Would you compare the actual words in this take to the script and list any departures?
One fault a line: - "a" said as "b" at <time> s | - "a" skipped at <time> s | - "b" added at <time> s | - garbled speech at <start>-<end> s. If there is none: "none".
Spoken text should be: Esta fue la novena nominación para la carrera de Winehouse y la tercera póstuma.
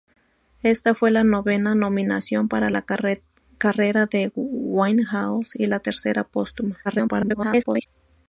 - garbled speech at 6.8-7.9 s